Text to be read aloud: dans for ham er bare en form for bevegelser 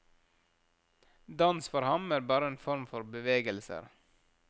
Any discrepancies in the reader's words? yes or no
no